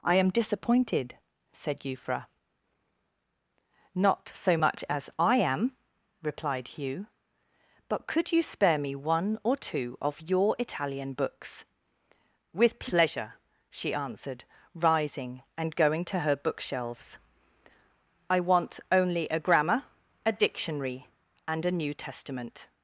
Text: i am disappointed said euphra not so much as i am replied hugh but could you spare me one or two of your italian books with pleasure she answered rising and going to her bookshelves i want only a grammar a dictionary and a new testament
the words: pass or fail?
pass